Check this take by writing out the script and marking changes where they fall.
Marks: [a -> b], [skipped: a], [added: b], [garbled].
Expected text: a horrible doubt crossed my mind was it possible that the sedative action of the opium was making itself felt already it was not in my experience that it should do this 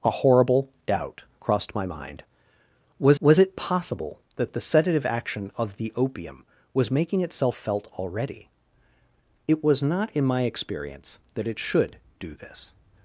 a horrible doubt crossed my mind was [added: was] it possible that the sedative action of the opium was making itself felt already it was not in my experience that it should do this